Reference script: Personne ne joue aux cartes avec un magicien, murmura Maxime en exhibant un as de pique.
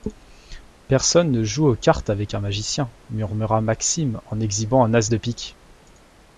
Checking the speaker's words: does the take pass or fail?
pass